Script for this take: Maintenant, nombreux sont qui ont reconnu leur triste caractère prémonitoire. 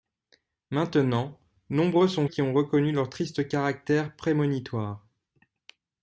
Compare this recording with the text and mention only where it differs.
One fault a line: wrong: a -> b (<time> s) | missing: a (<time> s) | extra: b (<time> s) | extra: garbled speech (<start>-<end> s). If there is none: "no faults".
no faults